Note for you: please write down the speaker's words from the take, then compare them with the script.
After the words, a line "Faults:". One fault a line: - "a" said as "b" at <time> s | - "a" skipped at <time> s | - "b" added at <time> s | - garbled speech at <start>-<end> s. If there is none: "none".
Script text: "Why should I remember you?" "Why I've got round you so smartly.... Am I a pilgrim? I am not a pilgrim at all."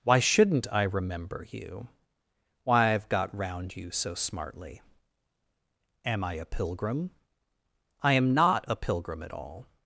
"Why shouldn't I remember you?" "Why I've got round you so smartly.... Am I a pilgrim? I am not a pilgrim at all."
Faults:
- "should" said as "shouldn't" at 0.2 s